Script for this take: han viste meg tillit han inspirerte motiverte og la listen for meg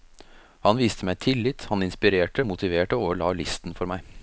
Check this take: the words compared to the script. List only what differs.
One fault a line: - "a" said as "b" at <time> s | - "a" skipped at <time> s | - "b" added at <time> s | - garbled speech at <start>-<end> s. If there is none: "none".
none